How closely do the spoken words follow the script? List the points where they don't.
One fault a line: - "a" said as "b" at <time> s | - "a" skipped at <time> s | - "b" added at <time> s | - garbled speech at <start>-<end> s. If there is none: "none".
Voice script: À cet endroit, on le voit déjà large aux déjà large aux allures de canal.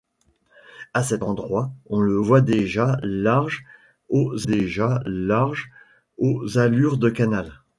none